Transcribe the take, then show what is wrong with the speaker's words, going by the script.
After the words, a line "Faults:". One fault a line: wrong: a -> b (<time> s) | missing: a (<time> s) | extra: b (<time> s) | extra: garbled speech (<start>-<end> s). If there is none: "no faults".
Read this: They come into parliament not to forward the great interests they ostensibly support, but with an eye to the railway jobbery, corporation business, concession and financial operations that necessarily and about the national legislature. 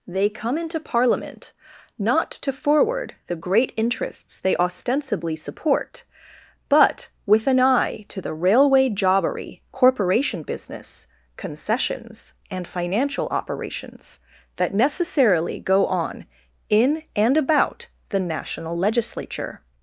They come into parliament not to forward the great interests they ostensibly support, but with an eye to the railway jobbery, corporation business, concessions and financial operations that necessarily go on in and about the national legislature.
Faults:
wrong: concession -> concessions (11.4 s)
extra: go on in (15.6 s)